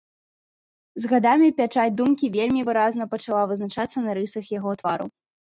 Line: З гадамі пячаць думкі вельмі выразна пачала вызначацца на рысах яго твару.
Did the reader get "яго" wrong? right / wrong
right